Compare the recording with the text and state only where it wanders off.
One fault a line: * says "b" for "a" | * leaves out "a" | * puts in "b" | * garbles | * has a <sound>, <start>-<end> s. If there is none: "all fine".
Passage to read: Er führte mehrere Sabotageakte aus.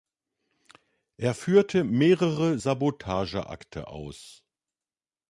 all fine